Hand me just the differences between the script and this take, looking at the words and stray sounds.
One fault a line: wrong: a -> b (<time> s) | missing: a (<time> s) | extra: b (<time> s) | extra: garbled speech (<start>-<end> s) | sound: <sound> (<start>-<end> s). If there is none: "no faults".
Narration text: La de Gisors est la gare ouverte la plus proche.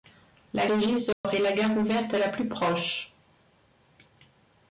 sound: dropout (1.1-1.2 s)